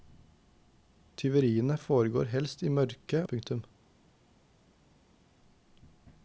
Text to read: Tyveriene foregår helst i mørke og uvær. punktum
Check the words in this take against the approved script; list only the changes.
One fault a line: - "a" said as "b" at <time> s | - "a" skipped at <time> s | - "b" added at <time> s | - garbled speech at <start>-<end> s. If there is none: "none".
- "og uvær" skipped at 3.2 s